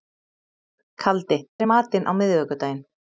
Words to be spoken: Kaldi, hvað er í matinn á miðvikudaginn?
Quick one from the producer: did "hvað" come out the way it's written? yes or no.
no